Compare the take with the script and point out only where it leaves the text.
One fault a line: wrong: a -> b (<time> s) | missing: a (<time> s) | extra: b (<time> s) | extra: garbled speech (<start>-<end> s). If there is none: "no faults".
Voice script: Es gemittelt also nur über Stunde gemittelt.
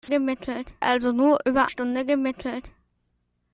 no faults